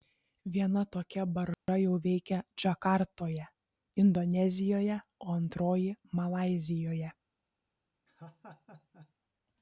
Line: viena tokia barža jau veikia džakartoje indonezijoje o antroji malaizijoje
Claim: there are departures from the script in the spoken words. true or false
false